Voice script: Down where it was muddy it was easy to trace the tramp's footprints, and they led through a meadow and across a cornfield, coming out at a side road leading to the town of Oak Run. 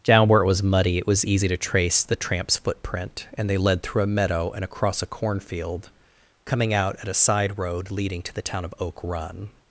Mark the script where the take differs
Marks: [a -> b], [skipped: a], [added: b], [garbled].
Down where it was muddy it was easy to trace the tramp's [footprints, -> footprint] and they led through a meadow and across a cornfield, coming out at a side road leading to the town of Oak Run.